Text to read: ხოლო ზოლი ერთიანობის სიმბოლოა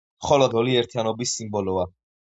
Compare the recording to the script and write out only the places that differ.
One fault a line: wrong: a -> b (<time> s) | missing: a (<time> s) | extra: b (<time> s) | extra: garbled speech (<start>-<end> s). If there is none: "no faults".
no faults